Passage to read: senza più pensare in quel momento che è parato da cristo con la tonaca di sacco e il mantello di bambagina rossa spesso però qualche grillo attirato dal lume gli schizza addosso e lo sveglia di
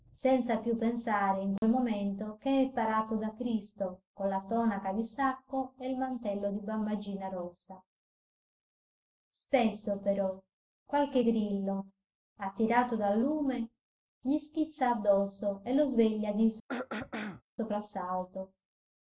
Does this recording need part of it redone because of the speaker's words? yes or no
no